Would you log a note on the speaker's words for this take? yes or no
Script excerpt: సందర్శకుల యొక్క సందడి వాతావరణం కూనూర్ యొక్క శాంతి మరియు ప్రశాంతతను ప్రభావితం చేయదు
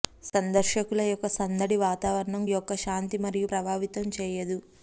yes